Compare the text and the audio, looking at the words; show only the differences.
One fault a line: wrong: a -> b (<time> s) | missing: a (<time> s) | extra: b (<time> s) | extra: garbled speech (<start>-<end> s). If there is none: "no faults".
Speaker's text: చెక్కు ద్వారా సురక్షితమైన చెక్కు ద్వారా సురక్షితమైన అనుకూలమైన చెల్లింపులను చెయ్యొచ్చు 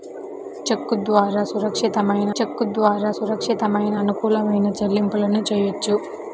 no faults